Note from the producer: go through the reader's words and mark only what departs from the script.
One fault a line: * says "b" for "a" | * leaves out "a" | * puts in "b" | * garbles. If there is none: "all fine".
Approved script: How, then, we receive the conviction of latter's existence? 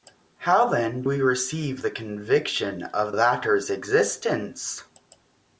all fine